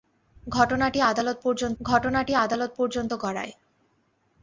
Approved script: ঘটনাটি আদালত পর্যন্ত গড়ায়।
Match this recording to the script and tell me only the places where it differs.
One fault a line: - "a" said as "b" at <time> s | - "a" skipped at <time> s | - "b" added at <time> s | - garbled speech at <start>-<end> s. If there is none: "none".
- "ঘটনাটি আদালত পর্যন্ত" added at 1.8 s